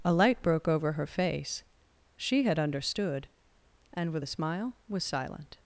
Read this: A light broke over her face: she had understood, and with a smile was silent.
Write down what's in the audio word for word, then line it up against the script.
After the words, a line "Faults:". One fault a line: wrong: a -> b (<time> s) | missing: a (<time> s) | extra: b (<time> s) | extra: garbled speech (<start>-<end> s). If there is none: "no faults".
A light broke over her face: she had understood, and with a smile was silent.
Faults:
no faults